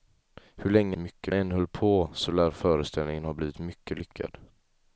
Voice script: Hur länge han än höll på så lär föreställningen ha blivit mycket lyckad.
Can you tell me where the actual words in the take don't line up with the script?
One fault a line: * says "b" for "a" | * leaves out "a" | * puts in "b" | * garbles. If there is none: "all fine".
* says "mycket" for "han"